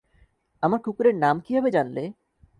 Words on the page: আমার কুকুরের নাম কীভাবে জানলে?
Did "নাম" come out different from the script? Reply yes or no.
no